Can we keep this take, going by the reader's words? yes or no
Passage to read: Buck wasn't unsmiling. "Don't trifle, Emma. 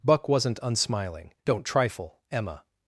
yes